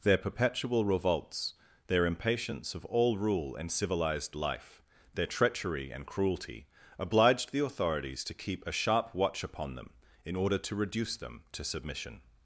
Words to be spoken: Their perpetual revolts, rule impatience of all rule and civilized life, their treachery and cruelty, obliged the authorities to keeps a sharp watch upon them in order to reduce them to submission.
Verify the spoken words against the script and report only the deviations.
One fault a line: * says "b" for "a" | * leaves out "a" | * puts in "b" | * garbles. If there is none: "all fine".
* says "their" for "rule"
* says "keep" for "keeps"